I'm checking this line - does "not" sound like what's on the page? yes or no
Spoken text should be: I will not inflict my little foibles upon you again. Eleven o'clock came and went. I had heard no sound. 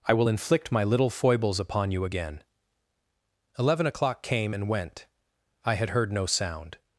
no